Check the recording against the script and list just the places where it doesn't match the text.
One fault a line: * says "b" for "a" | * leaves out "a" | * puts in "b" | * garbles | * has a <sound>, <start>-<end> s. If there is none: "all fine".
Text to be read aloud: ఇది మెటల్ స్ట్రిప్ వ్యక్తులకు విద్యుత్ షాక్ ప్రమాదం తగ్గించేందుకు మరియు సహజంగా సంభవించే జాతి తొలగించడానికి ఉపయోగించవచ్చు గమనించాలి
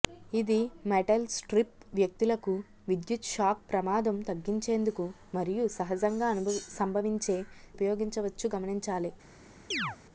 * leaves out "జాతి తొలగించడానికి"
* has a chirp, 9.7-10.0 s